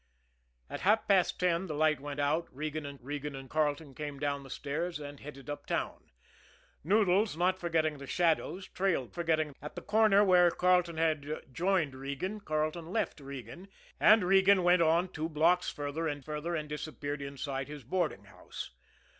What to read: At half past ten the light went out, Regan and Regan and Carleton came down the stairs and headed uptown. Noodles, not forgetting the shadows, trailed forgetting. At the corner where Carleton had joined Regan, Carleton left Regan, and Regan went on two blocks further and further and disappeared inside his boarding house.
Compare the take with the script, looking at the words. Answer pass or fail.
pass